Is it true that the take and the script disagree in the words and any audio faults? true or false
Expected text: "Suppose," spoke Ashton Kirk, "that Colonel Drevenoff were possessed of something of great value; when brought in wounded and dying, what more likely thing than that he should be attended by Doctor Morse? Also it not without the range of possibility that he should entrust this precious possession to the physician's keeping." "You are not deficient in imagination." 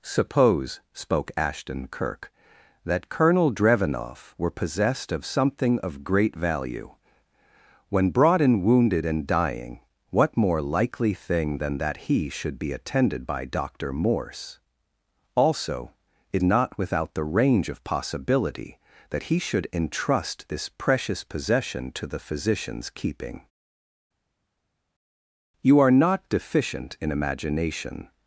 false